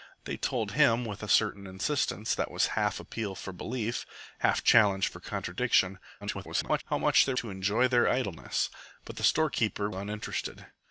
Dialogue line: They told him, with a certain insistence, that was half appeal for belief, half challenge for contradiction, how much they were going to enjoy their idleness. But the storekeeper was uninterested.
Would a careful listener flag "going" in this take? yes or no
yes